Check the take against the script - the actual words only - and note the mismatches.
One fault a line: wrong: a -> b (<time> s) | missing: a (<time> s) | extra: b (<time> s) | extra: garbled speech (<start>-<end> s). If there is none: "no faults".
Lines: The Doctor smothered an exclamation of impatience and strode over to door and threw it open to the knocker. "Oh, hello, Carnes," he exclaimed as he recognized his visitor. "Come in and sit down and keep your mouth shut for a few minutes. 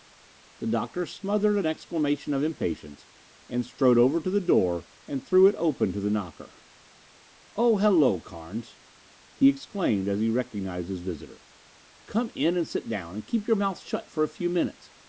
extra: the (4.3 s)